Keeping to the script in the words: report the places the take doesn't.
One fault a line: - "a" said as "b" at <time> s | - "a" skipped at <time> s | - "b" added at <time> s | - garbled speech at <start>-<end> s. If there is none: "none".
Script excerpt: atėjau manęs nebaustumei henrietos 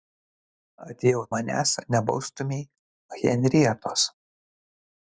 none